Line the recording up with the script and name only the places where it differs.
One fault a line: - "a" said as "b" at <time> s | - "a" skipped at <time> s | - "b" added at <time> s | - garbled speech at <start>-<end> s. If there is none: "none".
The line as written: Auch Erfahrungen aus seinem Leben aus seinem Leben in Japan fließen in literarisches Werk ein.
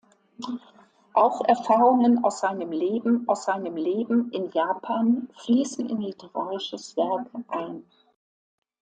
none